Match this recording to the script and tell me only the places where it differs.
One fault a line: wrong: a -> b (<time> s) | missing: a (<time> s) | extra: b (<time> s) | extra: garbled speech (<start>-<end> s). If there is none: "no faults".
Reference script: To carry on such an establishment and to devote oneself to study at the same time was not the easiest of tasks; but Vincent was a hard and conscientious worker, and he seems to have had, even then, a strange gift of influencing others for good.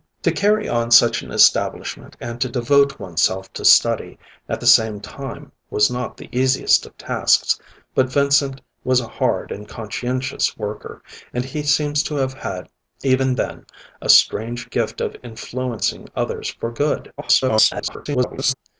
extra: garbled speech (17.2-18.6 s)